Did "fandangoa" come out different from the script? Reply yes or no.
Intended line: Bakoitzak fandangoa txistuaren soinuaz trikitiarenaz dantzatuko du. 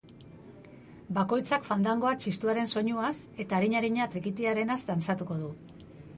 no